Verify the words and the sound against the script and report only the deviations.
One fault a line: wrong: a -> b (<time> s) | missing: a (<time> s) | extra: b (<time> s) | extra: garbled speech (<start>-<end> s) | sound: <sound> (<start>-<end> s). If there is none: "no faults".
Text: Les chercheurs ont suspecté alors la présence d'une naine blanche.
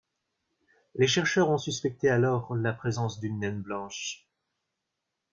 no faults